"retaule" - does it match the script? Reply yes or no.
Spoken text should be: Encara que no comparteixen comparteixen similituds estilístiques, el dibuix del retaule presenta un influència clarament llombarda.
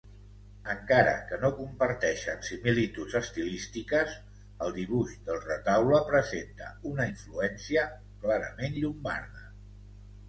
yes